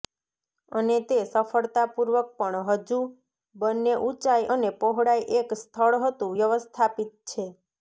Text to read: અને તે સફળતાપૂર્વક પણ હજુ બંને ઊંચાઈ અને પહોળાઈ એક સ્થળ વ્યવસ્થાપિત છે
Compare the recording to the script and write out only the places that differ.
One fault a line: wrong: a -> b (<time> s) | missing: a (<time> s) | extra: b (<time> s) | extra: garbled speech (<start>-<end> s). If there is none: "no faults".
extra: હતું (6.0 s)